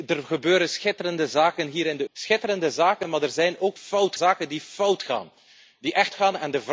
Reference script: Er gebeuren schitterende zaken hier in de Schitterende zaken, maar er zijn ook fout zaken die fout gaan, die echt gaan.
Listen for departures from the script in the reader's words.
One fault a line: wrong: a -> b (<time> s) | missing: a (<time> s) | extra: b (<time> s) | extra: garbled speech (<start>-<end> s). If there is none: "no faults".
no faults